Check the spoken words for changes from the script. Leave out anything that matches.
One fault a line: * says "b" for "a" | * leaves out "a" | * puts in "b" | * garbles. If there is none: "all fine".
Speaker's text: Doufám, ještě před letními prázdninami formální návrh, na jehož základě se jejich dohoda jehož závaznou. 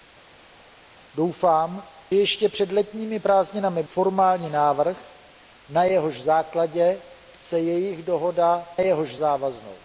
all fine